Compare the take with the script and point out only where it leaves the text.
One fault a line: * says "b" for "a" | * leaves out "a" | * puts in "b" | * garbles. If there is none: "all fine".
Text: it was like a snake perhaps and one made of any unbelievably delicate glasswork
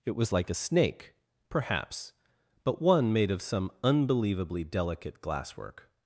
* says "but" for "and"
* says "some" for "any"